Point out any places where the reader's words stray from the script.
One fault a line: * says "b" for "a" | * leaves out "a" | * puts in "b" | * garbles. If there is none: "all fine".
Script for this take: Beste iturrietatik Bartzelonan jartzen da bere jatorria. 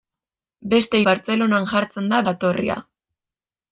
* leaves out "iturrietatik"
* leaves out "bere"